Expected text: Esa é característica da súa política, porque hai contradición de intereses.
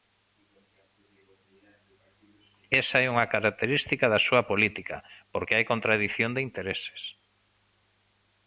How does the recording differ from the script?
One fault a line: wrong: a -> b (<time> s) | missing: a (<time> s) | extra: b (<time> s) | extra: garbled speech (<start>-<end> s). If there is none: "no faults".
extra: unha (3.1 s)